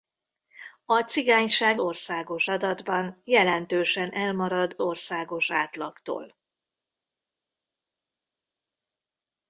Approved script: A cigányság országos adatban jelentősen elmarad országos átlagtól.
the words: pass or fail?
pass